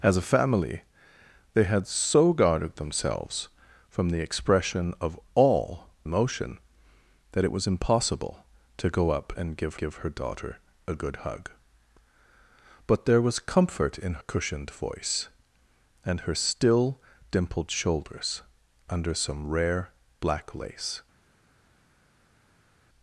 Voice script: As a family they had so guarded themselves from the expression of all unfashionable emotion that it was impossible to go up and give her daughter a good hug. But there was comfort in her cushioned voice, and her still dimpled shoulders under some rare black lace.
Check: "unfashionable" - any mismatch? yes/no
yes